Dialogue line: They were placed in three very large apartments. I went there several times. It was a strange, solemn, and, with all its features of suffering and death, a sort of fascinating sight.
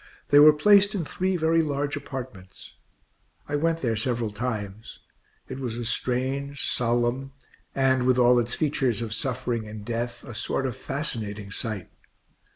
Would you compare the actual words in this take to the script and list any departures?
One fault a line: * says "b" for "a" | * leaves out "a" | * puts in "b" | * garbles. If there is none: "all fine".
all fine